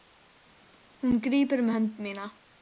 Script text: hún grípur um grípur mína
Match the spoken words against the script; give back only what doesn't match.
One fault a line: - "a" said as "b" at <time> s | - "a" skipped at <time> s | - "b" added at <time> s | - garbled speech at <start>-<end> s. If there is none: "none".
- "grípur" said as "hönd" at 1.7 s